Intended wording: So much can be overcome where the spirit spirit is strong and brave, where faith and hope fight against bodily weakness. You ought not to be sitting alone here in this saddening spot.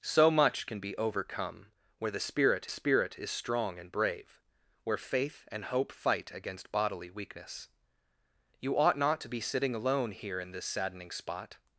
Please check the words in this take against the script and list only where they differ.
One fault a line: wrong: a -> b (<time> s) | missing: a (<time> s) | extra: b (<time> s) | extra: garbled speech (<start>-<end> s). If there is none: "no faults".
no faults